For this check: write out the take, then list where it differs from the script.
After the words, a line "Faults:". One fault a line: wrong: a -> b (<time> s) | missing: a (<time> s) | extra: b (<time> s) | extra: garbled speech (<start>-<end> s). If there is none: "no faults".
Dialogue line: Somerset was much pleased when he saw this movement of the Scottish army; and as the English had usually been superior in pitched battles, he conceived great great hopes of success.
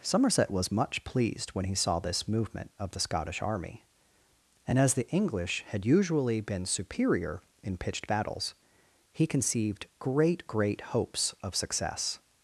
Somerset was much pleased when he saw this movement of the Scottish army; and as the English had usually been superior in pitched battles, he conceived great great hopes of success.
Faults:
no faults